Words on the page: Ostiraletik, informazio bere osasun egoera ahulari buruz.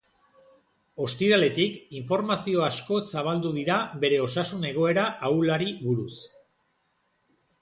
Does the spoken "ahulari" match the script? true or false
true